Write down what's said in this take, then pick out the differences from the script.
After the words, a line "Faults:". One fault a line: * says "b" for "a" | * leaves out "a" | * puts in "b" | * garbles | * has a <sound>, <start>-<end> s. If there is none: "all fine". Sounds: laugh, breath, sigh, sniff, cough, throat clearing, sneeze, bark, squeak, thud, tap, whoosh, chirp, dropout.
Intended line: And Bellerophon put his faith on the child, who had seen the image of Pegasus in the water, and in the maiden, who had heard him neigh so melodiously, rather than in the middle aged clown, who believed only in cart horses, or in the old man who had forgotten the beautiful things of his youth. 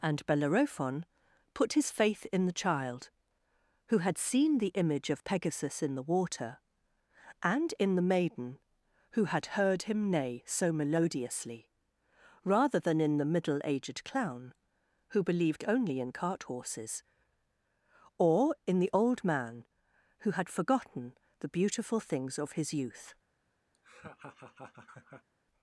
And Bellerophon put his faith in the child, who had seen the image of Pegasus in the water, and in the maiden, who had heard him neigh so melodiously, rather than in the middle aged clown, who believed only in cart horses, or in the old man who had forgotten the beautiful things of his youth.
Faults:
* says "in" for "on"
* has a laugh, 23.7-25.3 s